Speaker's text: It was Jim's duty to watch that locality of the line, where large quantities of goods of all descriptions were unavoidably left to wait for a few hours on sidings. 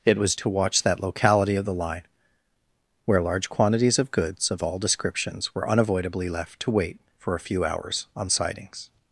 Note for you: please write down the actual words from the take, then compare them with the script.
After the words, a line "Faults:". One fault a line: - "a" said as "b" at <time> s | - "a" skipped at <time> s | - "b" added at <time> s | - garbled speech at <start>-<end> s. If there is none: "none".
It was To watch that locality of the line, where large quantities of goods of all descriptions were unavoidably left to wait for a few hours on sidings.
Faults:
- "Jim's duty" skipped at 0.3 s